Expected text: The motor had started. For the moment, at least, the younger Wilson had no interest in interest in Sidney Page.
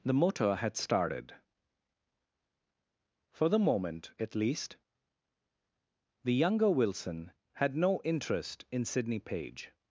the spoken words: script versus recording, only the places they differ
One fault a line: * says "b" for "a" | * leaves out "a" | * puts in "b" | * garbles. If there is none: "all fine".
* leaves out "interest in"